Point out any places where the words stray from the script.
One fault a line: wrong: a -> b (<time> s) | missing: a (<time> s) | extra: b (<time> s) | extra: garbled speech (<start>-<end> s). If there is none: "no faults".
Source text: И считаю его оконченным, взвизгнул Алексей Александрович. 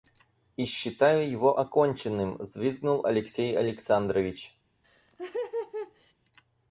no faults